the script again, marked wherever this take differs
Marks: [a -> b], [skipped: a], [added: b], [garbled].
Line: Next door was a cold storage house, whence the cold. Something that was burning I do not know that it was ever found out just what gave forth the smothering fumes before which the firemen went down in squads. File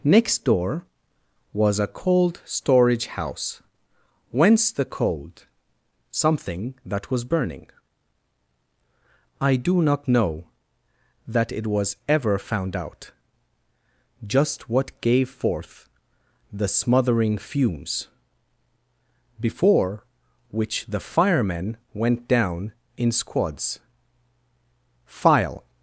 Next door was a cold storage house, whence the cold. Something that was burning I do not know that it was ever found out just what gave forth the smothering fumes before which the firemen went down in squads. File